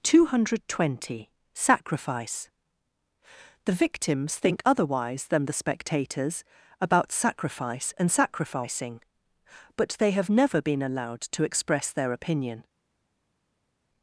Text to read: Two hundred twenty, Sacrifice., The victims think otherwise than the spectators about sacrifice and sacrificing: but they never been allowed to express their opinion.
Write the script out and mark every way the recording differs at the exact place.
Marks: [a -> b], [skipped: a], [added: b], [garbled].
Two hundred twenty, Sacrifice., The victims think otherwise than the spectators about sacrifice and sacrificing: but they [added: have] never been allowed to express their opinion.